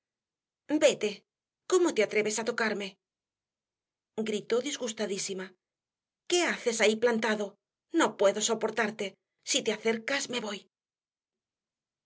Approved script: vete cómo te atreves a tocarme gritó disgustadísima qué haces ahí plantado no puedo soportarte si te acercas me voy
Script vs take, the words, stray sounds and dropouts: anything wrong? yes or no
no